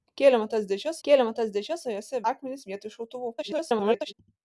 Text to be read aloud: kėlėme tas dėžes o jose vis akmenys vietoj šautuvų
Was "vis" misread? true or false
true